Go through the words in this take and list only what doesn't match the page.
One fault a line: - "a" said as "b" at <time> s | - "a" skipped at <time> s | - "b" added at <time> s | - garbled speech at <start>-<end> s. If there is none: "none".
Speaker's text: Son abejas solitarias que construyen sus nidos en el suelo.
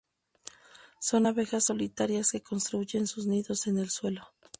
none